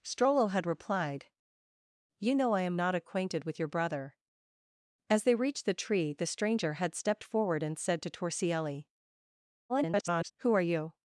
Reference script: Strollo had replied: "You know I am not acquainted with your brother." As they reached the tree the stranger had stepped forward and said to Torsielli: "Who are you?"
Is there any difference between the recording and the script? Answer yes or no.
yes